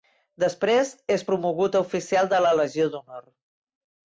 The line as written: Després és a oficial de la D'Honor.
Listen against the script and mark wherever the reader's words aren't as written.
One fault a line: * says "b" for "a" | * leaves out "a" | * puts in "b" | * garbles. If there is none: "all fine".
* puts in "promogut"
* puts in "Legió"